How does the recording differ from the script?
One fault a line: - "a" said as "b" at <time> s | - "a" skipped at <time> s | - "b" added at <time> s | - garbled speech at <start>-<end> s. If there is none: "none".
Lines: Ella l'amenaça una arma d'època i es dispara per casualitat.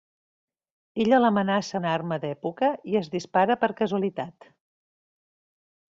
none